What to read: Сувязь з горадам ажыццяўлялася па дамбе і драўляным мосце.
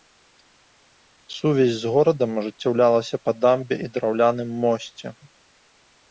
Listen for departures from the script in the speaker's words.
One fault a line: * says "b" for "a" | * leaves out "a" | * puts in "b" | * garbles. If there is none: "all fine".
all fine